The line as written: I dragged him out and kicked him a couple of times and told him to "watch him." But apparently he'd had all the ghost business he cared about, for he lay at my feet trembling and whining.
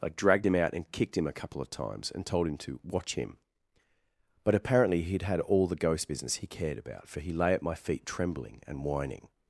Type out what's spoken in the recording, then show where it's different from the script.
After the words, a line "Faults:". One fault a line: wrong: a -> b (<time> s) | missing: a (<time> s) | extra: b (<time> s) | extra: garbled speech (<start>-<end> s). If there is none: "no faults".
I dragged him out and kicked him a couple of times and told him to "watch him." But apparently he'd had all the ghost business he cared about, for he lay at my feet trembling and whining.
Faults:
no faults